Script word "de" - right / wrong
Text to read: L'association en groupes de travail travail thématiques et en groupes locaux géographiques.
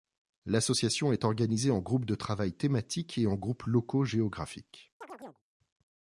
right